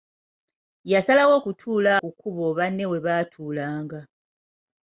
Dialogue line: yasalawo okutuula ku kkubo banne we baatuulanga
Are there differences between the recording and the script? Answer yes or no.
no